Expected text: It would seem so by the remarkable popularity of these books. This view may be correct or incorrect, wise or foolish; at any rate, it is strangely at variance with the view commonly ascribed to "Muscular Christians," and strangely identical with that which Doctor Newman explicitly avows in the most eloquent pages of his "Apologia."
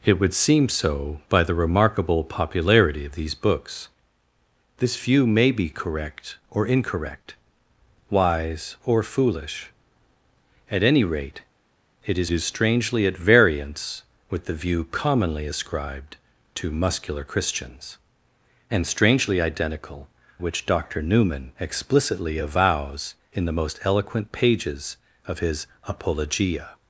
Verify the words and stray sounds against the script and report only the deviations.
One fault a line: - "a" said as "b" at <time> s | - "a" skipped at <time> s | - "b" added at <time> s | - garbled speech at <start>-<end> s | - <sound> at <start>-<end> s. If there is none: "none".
- "is" added at 12.3 s
- "with that" skipped at 20.1 s